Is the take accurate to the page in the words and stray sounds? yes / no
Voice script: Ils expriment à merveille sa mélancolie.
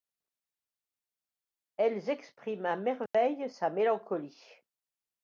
no